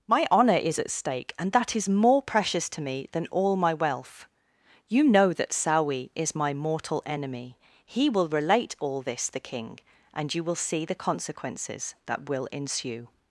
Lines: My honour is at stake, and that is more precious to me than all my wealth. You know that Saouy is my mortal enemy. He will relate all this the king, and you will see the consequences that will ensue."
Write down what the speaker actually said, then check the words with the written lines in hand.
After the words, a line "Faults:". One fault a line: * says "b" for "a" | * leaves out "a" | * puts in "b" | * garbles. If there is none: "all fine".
My honour is at stake, and that is more precious to me than all my wealth. You know that Saouy is my mortal enemy. He will relate all this the king, and you will see the consequences that will ensue."
Faults:
all fine